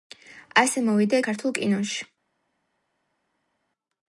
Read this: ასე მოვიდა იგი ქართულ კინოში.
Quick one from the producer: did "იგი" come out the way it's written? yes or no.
no